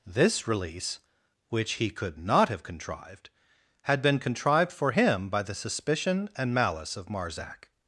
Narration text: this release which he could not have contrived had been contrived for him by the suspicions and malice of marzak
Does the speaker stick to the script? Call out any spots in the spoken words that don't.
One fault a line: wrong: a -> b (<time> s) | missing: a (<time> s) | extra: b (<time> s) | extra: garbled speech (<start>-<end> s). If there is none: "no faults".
wrong: suspicions -> suspicion (5.5 s)